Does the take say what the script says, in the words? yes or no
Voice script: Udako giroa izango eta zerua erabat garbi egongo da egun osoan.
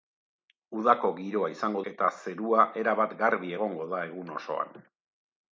yes